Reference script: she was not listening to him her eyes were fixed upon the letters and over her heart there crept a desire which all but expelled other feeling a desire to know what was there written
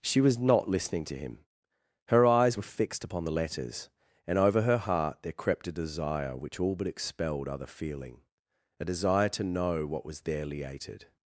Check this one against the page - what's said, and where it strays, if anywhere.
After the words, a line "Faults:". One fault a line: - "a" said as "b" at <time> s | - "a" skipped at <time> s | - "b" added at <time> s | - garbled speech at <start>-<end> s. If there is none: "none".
she was not listening to him her eyes were fixed upon the letters and over her heart there crept a desire which all but expelled other feeling a desire to know what was there liated
Faults:
- "written" said as "liated" at 10.4 s